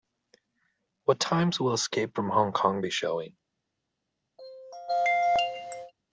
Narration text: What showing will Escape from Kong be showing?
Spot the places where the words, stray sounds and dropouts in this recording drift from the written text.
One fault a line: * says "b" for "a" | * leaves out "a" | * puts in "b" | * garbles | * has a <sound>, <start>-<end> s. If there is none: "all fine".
* says "times" for "showing"
* puts in "Hong"
* has a throat clearing, 4.4-5.9 s